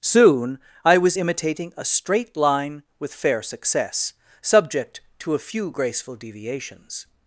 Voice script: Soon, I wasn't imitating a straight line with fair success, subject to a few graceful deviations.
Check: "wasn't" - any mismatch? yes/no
yes